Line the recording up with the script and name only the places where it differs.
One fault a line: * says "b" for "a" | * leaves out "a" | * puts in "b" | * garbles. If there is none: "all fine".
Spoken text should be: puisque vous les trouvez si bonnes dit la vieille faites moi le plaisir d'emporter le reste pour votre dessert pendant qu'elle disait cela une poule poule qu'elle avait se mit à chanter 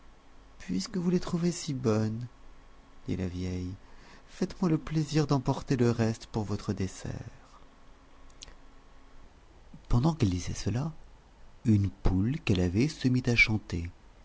* leaves out "poule"